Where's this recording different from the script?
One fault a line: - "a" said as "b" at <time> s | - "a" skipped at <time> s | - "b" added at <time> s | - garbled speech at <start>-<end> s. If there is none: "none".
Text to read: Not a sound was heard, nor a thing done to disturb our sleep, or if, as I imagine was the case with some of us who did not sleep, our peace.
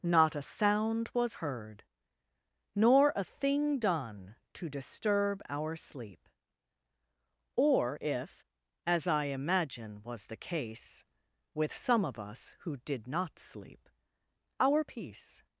none